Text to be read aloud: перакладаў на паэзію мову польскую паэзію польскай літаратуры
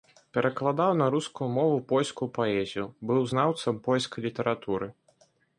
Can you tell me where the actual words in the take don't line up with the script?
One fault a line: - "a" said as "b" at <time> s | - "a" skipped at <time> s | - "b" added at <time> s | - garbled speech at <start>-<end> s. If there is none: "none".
- "паэзію" said as "рускую" at 1.1 s
- "быў знаўцам" added at 3.1 s